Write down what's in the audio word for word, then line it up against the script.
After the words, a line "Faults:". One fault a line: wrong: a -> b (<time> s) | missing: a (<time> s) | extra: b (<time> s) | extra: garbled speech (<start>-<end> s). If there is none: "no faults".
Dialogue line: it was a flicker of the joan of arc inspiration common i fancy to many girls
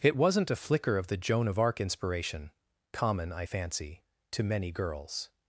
it wasn't a flicker of the joan of arc inspiration common i fancy to many girls
Faults:
wrong: was -> wasn't (0.2 s)